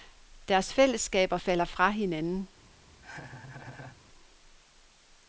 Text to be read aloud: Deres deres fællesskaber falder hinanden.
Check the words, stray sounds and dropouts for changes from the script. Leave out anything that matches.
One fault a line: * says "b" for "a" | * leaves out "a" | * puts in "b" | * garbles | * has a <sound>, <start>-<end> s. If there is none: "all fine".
* leaves out "deres"
* puts in "fra"
* has a laugh, 3.0-4.0 s